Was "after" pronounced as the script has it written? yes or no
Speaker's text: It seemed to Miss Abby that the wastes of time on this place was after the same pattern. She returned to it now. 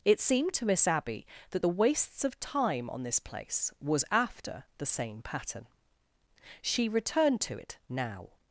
yes